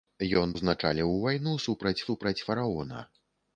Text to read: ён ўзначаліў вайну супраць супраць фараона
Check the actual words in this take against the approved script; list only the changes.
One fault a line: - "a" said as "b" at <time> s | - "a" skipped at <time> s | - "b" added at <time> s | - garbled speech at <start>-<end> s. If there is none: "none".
none